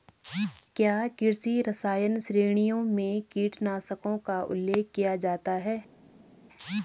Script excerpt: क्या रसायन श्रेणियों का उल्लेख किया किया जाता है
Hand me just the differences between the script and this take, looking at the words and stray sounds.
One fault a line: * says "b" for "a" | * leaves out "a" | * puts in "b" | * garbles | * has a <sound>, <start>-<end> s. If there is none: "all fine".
* puts in "कृषि"
* puts in "में कीटनाशकों"
* leaves out "किया"